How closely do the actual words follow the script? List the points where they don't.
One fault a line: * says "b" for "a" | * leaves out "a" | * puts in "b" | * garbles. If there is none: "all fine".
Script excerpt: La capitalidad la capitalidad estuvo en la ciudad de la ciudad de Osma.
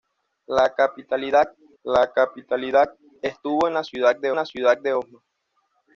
all fine